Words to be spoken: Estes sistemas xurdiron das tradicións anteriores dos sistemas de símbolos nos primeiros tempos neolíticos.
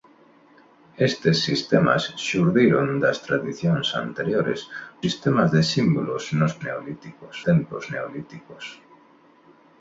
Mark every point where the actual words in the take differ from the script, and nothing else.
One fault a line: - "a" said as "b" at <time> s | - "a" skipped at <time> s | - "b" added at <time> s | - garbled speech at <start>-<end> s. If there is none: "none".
- "dos" skipped at 4.6 s
- "primeiros" said as "neolíticos" at 6.7 s